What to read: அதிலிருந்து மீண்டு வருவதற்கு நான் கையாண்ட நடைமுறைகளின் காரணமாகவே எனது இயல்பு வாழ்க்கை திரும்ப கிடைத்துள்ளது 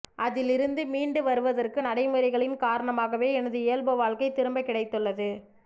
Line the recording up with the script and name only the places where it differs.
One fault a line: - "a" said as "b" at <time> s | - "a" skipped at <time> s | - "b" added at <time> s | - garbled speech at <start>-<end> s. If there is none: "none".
- "நான் கையாண்ட" skipped at 1.8 s